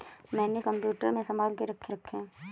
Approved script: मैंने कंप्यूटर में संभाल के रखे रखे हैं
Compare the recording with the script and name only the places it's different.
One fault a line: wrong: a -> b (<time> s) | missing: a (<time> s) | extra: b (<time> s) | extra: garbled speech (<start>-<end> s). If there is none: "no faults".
no faults